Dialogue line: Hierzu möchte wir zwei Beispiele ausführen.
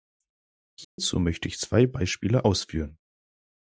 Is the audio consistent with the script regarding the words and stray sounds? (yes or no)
no